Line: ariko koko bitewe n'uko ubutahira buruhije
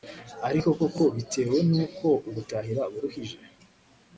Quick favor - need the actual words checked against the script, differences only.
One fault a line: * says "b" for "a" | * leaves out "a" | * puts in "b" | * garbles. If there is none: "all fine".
all fine